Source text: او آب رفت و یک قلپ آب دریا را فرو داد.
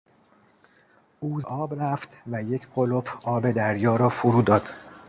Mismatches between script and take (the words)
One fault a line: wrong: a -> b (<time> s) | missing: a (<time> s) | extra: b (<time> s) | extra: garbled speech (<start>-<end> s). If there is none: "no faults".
no faults